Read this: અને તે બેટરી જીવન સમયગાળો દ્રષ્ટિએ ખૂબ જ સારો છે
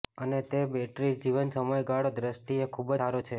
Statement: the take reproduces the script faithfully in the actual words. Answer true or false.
false